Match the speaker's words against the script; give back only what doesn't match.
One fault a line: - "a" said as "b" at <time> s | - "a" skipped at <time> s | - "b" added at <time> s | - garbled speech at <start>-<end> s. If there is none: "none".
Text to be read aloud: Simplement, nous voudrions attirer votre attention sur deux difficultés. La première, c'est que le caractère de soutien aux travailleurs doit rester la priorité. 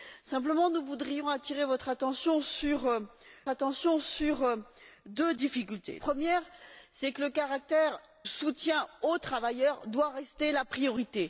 - "attention sur" added at 3.5 s
- "La" skipped at 6.0 s
- "de" skipped at 8.0 s